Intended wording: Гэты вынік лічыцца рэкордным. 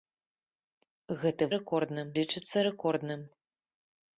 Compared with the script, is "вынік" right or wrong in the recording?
wrong